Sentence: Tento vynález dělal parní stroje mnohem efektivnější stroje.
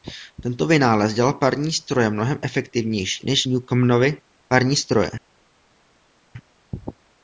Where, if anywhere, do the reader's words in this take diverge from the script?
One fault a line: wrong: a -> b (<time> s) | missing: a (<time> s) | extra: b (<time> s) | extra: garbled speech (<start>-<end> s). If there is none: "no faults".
extra: než Newcomenovy parní (3.3 s)